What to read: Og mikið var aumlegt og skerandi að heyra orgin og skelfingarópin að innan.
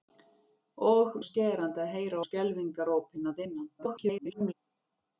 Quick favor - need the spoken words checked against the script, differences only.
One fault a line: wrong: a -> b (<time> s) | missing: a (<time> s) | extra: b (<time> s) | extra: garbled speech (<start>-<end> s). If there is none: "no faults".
missing: mikið var aumlegt (1.2 s)
missing: orgin (2.2 s)
extra: garbled speech (3.8-4.5 s)